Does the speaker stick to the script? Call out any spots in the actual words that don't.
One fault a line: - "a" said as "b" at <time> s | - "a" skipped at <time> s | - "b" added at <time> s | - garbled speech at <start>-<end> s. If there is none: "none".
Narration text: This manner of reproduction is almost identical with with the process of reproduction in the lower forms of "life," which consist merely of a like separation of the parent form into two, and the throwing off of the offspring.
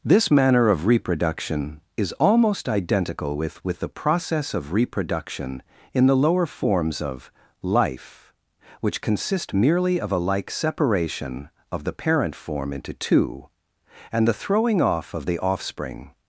none